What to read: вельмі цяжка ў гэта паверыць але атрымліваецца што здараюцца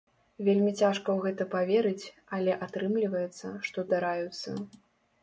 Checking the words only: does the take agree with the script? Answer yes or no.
yes